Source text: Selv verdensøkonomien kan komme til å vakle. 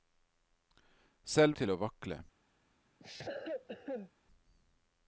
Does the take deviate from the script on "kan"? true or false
true